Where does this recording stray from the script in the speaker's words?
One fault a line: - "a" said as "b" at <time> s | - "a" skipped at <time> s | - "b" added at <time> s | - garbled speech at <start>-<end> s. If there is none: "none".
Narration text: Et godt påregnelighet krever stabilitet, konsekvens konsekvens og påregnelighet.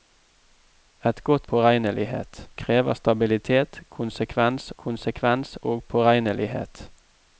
none